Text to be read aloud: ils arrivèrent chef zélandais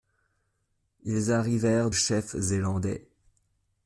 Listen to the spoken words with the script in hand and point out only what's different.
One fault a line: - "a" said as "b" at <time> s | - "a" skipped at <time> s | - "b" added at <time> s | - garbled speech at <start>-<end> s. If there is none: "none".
none